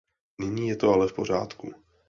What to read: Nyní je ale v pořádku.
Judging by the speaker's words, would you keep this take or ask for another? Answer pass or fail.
fail